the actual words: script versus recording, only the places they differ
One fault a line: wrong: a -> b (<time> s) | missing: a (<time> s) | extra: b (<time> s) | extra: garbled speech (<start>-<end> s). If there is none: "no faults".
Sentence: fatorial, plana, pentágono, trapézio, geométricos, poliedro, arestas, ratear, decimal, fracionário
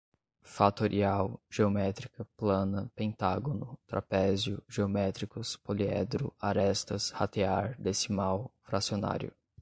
extra: geométrica (1.5 s)